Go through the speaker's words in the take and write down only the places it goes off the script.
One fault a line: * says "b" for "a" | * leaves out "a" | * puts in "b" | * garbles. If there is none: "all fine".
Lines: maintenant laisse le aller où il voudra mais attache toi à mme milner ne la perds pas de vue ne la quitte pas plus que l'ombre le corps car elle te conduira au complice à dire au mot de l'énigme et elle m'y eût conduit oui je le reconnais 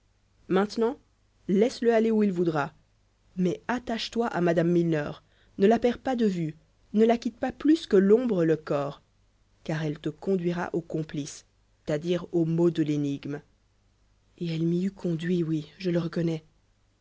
all fine